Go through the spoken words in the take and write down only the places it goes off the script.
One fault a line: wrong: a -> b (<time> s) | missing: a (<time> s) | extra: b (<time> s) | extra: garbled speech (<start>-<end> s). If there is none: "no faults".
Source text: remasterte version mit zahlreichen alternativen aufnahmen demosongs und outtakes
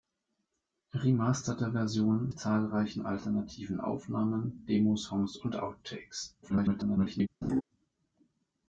missing: mit (2.3 s)
extra: garbled speech (6.4-7.3 s)